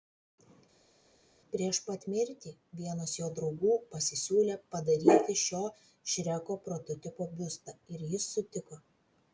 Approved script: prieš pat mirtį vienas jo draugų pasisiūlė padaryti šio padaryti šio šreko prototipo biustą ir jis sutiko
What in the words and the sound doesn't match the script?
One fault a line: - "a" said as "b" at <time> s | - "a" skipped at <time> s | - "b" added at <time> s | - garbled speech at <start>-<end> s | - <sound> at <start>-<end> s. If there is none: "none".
- "padaryti šio" skipped at 5.6 s